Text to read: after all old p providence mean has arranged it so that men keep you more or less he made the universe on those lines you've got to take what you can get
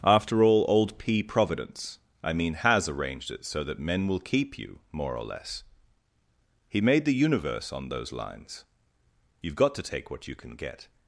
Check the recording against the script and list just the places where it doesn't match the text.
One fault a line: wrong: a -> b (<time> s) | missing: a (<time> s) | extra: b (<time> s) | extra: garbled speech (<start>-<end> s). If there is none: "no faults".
extra: i (2.2 s)
extra: will (4.1 s)